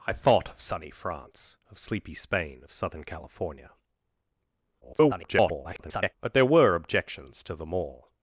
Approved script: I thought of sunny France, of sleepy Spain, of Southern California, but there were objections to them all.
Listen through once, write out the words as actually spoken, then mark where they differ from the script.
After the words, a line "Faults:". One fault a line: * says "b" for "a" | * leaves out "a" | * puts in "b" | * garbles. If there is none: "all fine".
I thought of sunny France, of sleepy Spain, of Southern California, [garbled] but there were objections to them all.
Faults:
* garbles